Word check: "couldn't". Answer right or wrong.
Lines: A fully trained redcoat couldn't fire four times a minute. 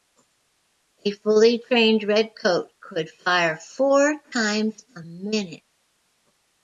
wrong